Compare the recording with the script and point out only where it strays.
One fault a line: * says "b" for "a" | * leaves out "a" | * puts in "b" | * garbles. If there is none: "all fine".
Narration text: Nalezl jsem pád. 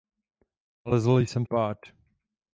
all fine